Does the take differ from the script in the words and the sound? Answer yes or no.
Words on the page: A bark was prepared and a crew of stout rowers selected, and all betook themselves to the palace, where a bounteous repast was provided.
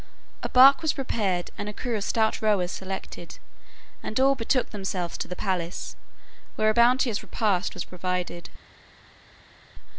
no